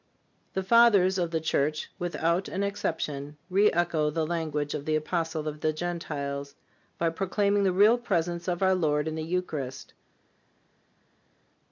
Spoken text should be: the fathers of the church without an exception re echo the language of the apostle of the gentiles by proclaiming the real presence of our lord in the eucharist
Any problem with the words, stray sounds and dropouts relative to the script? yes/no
no